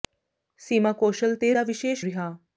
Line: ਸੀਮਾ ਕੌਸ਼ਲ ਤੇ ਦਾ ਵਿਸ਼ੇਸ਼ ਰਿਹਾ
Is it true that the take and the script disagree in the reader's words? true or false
false